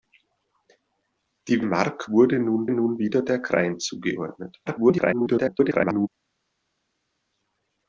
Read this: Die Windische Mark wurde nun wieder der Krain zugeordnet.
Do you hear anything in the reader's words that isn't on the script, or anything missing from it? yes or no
yes